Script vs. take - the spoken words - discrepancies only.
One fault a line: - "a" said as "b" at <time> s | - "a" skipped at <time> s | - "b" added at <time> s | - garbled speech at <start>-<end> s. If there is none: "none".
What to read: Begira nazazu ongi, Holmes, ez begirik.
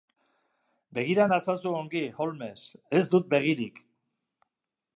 - "dut" added at 3.2 s